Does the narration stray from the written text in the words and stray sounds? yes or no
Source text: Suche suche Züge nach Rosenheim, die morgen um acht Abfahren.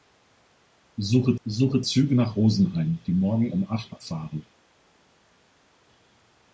no